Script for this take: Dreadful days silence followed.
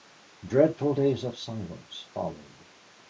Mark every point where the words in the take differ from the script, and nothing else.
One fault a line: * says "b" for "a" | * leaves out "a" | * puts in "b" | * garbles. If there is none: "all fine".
* puts in "of"